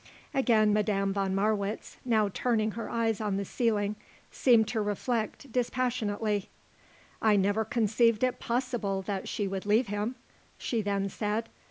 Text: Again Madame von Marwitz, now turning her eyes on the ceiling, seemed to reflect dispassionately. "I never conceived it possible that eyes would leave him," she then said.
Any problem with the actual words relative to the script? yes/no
yes